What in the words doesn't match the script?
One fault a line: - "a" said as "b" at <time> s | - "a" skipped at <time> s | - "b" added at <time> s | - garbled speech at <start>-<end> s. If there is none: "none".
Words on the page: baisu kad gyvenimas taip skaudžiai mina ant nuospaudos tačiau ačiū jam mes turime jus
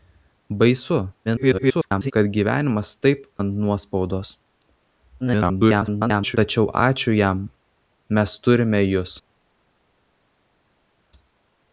- garbled speech at 1.3-2.1 s
- "skaudžiai mina" skipped at 3.2 s
- garbled speech at 5.2-6.4 s